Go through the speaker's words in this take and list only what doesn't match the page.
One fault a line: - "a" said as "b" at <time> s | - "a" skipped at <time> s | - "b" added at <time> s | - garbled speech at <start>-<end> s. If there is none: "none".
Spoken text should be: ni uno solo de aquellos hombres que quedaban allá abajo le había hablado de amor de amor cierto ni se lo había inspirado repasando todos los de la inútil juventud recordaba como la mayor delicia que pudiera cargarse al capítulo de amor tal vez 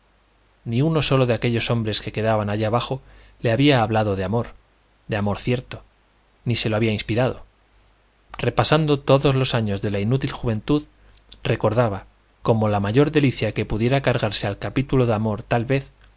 - "años" added at 9.6 s